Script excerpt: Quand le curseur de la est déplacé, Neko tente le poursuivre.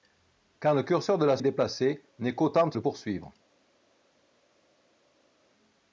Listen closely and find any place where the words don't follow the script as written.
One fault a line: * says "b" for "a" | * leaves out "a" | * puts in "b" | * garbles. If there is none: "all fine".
all fine